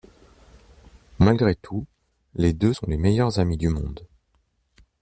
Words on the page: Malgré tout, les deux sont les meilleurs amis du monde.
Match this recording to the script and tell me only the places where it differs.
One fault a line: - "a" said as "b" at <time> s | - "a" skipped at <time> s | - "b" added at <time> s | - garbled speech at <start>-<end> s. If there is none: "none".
none